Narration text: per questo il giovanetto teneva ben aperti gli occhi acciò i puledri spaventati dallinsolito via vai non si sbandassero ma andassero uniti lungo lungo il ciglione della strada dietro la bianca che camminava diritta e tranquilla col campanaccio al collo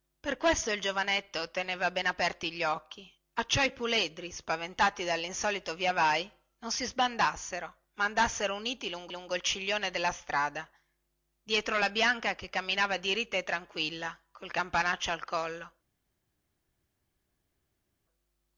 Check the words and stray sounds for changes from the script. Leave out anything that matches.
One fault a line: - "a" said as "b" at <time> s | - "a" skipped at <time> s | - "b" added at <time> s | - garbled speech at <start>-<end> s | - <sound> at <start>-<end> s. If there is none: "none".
none